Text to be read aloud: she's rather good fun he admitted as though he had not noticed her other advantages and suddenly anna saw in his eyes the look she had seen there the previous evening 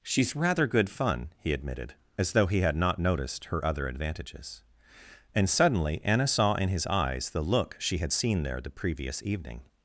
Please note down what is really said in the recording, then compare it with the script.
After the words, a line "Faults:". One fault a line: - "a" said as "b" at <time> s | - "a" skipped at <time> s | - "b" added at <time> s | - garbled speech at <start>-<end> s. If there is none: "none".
she's rather good fun he admitted as though he had not noticed her other advantages and suddenly anna saw in his eyes the look she had seen there the previous evening
Faults:
none